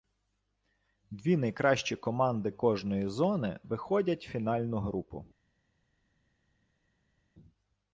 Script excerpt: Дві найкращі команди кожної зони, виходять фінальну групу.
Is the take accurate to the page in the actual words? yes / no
yes